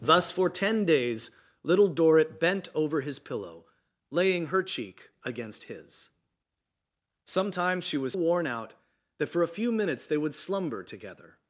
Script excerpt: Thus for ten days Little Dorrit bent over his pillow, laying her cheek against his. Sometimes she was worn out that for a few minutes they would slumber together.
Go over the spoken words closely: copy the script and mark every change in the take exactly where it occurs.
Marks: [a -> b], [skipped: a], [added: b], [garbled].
Thus for ten days Little Dorrit bent over his pillow, laying her cheek against his. Sometimes she was worn out that for a few minutes they would slumber together.